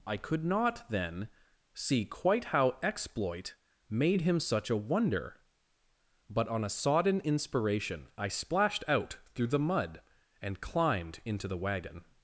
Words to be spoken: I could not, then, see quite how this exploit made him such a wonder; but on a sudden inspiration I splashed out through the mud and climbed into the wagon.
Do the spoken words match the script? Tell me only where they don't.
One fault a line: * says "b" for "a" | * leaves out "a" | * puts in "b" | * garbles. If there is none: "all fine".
* leaves out "this"
* says "sodden" for "sudden"